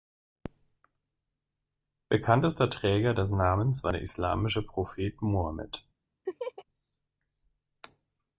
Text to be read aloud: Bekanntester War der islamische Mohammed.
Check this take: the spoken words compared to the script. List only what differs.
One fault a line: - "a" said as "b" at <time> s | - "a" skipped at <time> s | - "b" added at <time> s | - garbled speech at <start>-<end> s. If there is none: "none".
- "Träger des Namens" added at 2.7 s
- "Prophet" added at 4.6 s